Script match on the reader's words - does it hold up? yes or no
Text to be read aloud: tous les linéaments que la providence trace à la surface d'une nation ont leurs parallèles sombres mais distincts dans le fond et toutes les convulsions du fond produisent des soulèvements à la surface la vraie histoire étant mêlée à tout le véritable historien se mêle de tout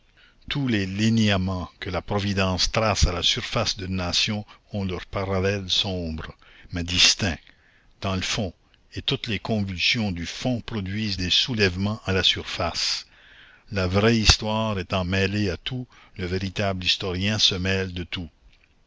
yes